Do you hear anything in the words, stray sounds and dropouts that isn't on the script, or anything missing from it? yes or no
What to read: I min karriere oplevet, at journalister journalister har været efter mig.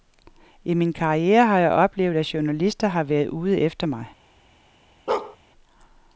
yes